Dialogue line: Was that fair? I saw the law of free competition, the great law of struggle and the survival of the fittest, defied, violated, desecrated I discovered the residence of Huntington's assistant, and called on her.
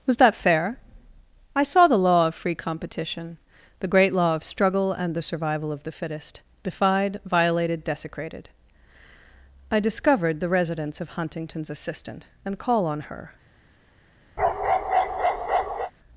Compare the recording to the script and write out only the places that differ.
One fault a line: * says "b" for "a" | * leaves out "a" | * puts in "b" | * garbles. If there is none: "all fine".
* says "call" for "called"